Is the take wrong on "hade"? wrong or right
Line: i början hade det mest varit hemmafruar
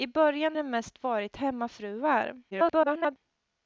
wrong